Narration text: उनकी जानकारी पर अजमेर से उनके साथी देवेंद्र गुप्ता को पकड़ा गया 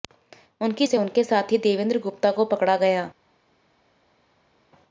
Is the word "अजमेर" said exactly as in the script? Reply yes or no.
no